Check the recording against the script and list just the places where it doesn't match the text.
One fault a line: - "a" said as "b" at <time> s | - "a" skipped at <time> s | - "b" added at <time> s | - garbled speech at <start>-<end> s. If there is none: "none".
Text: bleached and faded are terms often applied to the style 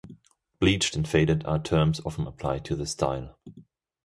none